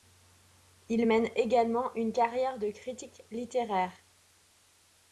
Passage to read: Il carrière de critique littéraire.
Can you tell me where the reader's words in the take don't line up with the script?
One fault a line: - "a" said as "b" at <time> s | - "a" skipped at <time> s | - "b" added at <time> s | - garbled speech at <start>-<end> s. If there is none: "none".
- "mène également une" added at 1.0 s